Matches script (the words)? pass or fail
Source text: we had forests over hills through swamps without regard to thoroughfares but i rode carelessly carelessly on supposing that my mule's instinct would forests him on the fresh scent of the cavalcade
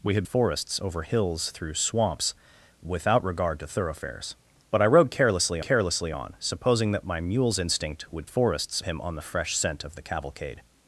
pass